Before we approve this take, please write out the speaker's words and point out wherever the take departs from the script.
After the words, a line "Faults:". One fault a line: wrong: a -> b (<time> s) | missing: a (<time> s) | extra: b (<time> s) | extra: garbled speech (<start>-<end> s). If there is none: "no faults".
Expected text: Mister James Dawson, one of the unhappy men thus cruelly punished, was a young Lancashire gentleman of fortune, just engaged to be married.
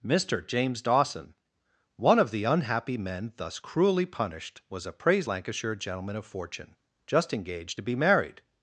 Mister James Dawson, one of the unhappy men thus cruelly punished, was a praise Lancashire gentleman of fortune, just engaged to be married.
Faults:
wrong: young -> praise (4.9 s)